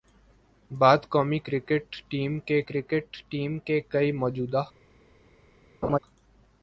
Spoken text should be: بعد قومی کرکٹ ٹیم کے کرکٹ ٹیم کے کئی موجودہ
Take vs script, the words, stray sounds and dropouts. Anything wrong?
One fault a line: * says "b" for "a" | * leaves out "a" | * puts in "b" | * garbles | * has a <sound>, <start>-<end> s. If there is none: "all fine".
* has a laugh, 5.8-6.0 s